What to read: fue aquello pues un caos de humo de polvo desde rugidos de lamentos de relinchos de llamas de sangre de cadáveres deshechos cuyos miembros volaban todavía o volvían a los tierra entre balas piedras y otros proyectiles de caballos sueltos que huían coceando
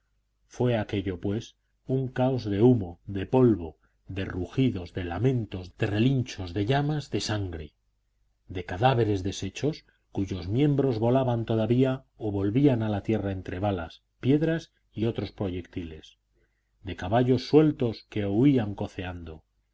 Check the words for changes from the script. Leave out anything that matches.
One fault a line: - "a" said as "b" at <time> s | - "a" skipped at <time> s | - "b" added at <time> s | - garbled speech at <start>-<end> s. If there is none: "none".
- "desde" said as "de" at 4.1 s
- "los" said as "la" at 12.9 s